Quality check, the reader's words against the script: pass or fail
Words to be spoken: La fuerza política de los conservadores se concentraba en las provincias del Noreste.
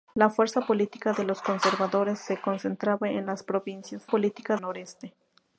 fail